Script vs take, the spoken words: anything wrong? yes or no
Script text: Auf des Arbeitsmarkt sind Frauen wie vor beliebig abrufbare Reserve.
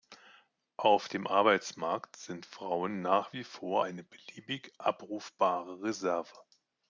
yes